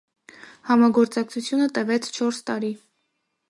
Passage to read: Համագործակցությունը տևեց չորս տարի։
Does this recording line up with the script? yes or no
yes